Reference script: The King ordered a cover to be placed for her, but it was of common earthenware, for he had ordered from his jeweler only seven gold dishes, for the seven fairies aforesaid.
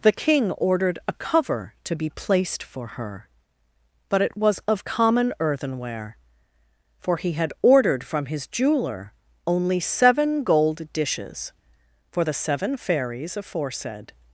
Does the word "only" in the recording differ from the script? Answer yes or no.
no